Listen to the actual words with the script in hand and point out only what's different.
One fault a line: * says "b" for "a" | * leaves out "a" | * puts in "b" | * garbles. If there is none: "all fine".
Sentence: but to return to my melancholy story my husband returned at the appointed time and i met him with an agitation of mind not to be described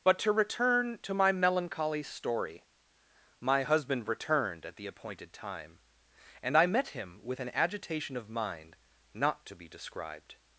all fine